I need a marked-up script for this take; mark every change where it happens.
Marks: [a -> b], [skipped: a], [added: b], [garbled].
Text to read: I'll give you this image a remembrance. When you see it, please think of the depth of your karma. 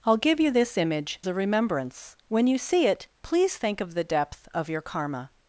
I'll give you this image a remembrance. When you see it, please think of the depth of your karma.